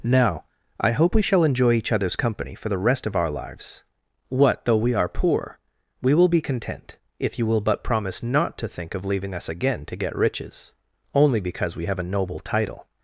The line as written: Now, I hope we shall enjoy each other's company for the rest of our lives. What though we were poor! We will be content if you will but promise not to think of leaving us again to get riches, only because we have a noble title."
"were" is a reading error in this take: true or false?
true